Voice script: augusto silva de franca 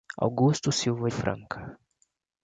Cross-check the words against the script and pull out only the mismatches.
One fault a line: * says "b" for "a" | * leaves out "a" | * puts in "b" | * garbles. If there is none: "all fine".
* leaves out "de"